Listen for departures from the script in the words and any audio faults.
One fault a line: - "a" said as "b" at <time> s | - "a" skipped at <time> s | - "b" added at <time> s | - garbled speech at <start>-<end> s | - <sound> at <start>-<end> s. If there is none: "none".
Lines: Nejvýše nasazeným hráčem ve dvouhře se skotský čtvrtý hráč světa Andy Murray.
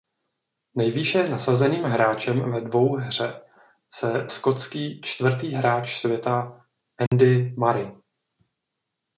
- dropout at 7.1-7.1 s